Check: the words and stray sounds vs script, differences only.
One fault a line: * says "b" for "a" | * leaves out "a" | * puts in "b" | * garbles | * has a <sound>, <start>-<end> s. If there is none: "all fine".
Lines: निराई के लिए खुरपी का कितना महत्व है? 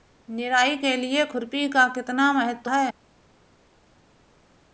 all fine